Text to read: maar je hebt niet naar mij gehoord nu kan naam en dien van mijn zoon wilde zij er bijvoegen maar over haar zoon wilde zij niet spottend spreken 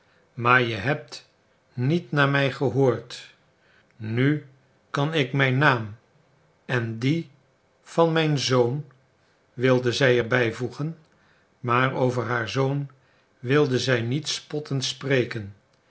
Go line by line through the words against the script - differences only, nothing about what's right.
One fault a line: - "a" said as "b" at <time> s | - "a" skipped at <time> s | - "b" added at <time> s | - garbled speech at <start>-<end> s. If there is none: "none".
- "ik mijn" added at 5.1 s